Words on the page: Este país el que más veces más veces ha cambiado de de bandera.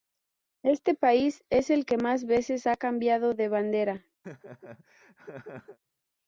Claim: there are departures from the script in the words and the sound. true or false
true